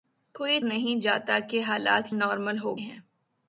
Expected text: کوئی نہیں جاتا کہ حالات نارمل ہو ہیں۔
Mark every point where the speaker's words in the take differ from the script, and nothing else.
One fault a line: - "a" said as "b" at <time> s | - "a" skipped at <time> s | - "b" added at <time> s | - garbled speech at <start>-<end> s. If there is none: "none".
none